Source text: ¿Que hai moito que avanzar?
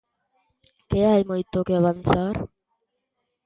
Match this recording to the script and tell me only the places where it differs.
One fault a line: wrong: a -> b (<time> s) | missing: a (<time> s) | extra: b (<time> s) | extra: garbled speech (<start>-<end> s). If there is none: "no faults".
no faults